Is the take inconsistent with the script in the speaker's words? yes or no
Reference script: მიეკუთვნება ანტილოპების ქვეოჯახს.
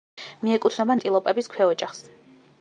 no